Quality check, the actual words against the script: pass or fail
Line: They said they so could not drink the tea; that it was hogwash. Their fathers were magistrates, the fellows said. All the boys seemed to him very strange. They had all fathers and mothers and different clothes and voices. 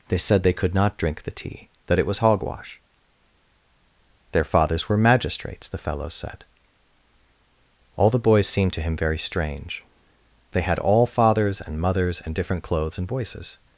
fail